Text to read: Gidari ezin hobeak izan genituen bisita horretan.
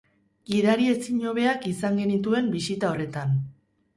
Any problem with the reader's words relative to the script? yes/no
no